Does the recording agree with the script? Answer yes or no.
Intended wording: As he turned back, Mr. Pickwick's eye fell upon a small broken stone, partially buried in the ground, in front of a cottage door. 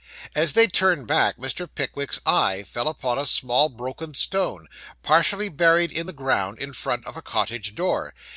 no